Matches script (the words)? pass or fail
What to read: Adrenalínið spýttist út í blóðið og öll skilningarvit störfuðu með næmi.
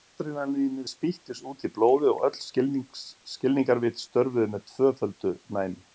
fail